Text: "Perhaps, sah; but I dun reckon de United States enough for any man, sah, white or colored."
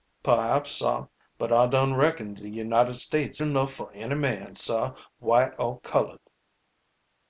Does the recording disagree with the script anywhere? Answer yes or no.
no